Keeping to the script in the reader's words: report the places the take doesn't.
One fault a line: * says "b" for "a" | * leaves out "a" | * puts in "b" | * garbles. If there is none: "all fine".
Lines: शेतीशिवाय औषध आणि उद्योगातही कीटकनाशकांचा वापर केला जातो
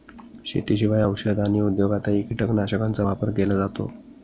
all fine